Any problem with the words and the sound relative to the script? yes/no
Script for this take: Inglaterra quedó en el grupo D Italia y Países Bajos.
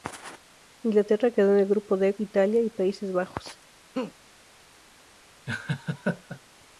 yes